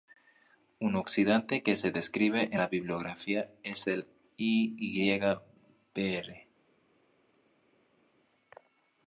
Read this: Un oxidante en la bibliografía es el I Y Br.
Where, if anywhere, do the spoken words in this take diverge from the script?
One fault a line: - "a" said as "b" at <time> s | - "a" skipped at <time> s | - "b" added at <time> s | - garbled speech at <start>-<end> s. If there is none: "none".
- "que se describe" added at 1.6 s